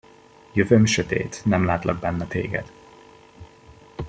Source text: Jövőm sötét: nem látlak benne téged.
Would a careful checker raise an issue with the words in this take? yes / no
no